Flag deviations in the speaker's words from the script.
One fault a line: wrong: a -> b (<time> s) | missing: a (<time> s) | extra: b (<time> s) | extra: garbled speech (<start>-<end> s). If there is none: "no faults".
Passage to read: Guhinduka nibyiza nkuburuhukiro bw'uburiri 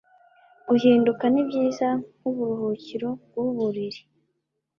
no faults